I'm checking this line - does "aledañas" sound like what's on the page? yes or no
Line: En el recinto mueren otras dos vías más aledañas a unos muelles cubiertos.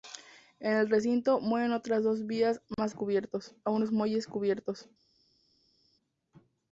no